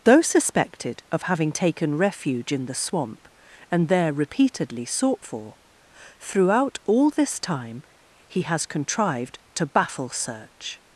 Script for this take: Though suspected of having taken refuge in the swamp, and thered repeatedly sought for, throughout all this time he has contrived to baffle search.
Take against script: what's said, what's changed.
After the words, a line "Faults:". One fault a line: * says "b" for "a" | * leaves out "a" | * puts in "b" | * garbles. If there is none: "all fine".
Though suspected of having taken refuge in the swamp, and there repeatedly sought for, throughout all this time he has contrived to baffle search.
Faults:
* says "there" for "thered"